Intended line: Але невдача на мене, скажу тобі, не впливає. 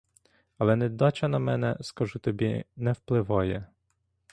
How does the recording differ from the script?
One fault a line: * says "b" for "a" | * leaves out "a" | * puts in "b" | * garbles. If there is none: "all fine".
all fine